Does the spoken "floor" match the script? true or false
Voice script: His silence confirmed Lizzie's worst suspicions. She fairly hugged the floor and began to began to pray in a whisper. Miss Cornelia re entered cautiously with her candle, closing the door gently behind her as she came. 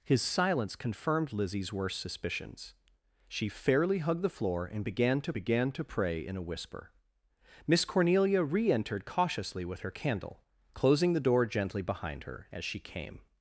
true